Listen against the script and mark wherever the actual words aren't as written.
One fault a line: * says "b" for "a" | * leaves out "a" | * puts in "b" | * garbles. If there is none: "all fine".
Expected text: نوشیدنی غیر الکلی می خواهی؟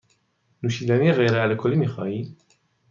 all fine